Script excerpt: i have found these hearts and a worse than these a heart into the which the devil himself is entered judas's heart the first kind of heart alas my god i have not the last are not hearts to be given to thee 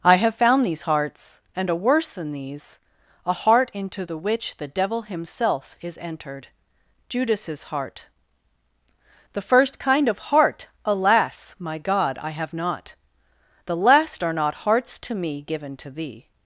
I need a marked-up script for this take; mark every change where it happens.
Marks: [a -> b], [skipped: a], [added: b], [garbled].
i have found these hearts and a worse than these a heart into the which the devil himself is entered judas's heart the first kind of heart alas my god i have not the last are not hearts to [be -> me] given to thee